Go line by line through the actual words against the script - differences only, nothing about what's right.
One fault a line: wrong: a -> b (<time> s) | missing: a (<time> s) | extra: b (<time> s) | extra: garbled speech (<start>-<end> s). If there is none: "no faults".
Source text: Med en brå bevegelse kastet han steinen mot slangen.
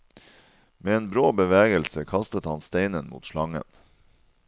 no faults